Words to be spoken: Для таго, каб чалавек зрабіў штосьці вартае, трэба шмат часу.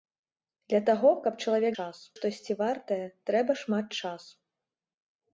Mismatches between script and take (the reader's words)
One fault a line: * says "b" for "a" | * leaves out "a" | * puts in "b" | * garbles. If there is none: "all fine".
* says "часу" for "зрабіў"